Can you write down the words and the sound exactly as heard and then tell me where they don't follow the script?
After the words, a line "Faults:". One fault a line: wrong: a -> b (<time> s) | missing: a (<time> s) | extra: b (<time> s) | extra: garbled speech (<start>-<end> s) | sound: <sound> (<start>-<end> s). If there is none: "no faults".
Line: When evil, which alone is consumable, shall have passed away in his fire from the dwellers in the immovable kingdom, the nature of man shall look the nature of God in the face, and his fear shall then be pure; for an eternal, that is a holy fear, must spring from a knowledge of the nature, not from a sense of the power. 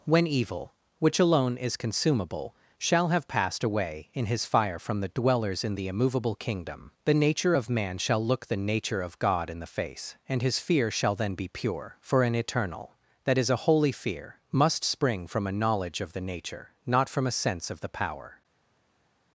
When evil, which alone is consumable, shall have passed away in his fire from the dwellers in the immovable kingdom, the nature of man shall look the nature of God in the face, and his fear shall then be pure; for an eternal, that is a holy fear, must spring from a knowledge of the nature, not from a sense of the power.
Faults:
no faults